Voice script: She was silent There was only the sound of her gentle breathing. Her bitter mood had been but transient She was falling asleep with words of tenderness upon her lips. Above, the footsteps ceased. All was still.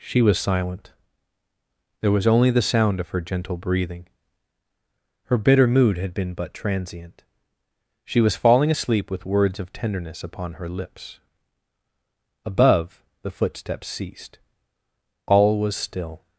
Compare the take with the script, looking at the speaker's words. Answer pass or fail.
pass